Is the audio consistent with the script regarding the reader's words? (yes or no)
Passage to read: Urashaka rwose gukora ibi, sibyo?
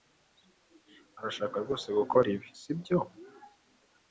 yes